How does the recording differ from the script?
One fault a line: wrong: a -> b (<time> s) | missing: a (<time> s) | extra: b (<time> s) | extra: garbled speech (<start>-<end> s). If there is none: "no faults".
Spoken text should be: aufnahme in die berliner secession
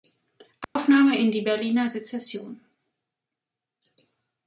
no faults